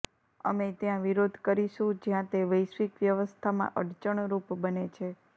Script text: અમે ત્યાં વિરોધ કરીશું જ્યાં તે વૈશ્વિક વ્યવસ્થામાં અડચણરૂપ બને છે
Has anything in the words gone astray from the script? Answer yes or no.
no